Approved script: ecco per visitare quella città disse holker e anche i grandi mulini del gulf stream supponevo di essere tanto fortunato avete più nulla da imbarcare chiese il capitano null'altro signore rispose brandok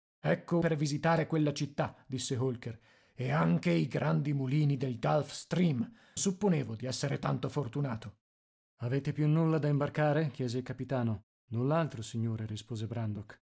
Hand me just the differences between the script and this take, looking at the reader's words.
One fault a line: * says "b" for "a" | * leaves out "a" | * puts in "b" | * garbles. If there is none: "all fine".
all fine